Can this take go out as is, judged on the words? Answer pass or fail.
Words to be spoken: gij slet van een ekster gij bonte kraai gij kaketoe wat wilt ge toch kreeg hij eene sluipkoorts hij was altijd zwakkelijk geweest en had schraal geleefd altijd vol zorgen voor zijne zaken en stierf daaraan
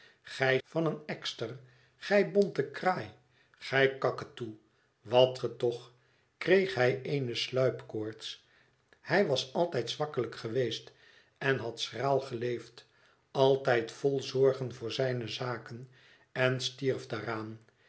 fail